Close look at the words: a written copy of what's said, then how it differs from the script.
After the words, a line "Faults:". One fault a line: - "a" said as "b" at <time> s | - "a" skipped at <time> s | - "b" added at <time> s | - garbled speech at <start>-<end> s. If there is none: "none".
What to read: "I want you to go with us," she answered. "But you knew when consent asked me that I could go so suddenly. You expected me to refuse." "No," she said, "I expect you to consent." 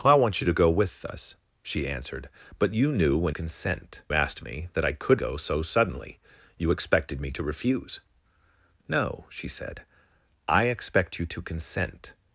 "I want you to go with us," she answered. "But you knew when consent asked me that I could go so suddenly. You expected me to refuse." "No," she said, "I expect you to consent."
Faults:
none